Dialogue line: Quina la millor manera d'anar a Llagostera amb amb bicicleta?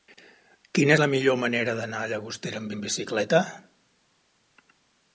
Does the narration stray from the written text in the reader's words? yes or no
no